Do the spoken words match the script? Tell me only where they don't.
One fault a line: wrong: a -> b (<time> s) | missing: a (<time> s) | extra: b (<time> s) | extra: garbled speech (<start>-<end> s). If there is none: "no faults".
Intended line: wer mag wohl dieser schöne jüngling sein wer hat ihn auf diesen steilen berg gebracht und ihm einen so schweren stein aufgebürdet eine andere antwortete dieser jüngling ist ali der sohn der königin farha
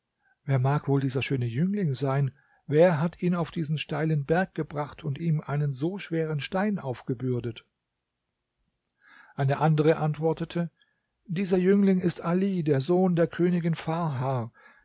no faults